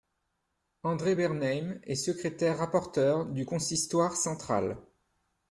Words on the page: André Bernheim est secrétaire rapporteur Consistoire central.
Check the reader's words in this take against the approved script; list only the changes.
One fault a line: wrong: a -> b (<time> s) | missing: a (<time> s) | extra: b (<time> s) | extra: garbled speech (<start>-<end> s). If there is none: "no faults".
extra: du (3.2 s)